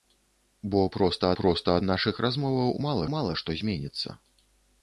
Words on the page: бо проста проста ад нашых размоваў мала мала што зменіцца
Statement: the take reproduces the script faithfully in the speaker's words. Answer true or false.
true